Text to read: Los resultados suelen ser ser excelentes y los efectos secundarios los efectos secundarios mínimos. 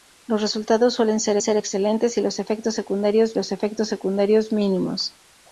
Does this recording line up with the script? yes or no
yes